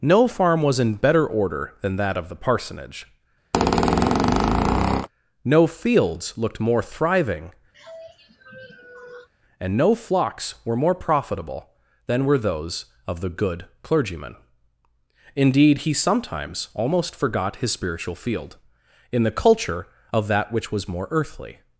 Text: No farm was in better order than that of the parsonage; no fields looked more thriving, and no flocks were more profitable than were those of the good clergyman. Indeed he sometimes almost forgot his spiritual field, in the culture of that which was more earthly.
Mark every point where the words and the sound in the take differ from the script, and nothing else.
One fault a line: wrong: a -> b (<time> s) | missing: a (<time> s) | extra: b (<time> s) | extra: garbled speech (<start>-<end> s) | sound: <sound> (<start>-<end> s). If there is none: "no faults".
sound: squeak (3.5-5.1 s)
sound: sigh (7.7-9.3 s)